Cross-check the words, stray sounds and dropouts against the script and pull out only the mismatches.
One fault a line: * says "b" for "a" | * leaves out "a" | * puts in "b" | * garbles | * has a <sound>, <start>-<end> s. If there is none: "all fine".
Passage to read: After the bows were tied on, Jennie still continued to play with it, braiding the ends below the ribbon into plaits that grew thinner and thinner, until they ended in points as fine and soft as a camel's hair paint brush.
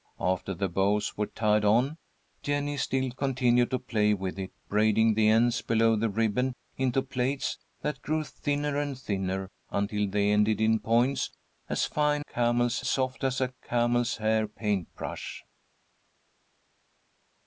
* says "camel's" for "and"